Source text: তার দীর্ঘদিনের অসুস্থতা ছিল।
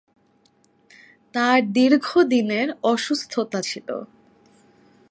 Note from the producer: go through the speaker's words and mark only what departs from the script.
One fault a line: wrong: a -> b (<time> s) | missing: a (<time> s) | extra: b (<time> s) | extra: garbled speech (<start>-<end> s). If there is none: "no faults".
no faults